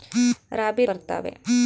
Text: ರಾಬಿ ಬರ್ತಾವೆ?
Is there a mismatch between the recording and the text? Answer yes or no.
no